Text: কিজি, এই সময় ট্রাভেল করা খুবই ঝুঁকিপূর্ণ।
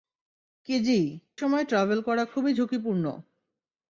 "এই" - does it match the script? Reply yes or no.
no